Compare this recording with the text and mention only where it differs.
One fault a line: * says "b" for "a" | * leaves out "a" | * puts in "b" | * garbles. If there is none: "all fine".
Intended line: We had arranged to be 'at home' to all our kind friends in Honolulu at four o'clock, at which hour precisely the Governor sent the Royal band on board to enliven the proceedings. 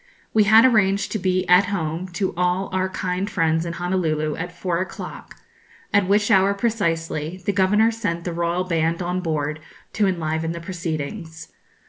all fine